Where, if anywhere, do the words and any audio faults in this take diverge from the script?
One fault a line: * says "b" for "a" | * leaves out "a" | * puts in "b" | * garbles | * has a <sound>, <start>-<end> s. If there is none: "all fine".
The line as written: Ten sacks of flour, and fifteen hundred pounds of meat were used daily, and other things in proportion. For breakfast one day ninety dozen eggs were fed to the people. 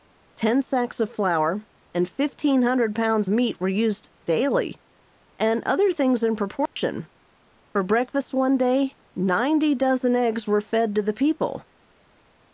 * leaves out "of"
* has a dropout, 6.7-6.8 s